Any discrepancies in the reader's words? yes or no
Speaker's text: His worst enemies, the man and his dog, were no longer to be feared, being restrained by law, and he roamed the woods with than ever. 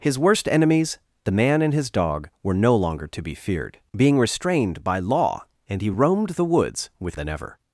no